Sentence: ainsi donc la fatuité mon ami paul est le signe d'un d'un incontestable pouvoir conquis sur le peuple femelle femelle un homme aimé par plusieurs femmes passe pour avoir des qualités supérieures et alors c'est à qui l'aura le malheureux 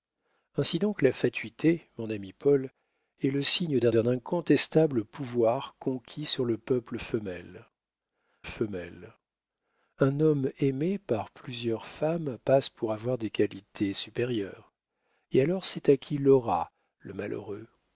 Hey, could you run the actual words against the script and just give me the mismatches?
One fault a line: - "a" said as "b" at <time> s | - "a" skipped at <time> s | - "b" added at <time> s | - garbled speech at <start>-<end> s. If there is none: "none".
none